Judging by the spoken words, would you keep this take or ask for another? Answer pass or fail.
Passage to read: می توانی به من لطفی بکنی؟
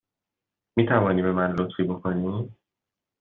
pass